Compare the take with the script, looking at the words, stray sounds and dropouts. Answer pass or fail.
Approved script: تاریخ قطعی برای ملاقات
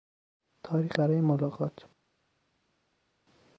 fail